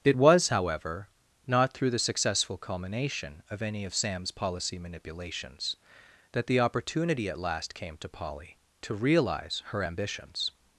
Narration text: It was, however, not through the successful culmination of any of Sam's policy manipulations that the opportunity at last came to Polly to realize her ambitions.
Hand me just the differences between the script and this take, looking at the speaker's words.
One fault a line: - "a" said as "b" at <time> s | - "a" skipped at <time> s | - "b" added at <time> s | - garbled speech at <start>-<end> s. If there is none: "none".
none